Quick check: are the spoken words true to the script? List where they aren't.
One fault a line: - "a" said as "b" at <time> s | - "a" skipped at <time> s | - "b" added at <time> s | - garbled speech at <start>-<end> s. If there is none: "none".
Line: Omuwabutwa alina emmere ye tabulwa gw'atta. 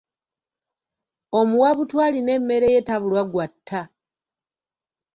none